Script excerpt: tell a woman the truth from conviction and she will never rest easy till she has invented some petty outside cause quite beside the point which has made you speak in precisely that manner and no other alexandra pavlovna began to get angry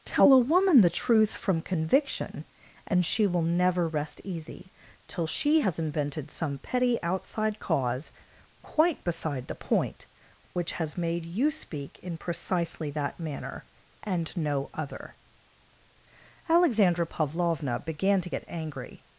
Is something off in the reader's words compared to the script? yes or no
no